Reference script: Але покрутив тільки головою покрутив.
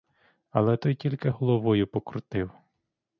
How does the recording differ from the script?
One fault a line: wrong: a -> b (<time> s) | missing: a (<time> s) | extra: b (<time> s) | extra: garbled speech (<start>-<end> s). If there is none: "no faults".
wrong: покрутив -> той (0.8 s)